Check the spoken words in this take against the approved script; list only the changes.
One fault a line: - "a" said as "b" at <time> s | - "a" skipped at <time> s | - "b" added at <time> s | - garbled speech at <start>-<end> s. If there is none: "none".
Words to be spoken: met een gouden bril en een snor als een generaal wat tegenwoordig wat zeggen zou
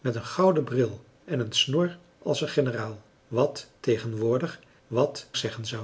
none